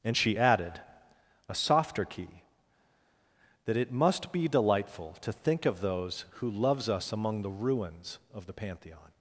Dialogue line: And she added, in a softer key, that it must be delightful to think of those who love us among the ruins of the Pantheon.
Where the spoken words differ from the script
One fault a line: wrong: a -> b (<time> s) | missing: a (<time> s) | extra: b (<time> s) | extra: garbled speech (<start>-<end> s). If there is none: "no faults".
missing: in (0.8 s)
wrong: love -> loves (6.5 s)